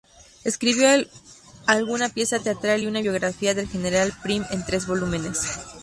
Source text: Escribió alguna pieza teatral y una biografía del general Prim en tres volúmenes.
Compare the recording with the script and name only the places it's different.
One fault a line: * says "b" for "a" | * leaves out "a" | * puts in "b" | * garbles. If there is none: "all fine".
all fine